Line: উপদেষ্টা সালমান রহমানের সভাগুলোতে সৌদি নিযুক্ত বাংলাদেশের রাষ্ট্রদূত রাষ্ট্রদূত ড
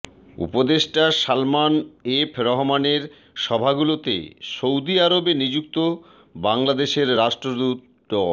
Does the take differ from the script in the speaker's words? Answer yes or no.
yes